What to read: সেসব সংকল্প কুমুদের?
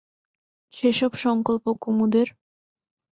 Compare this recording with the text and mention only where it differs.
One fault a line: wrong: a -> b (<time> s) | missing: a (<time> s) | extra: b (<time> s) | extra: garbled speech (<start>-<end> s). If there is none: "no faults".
no faults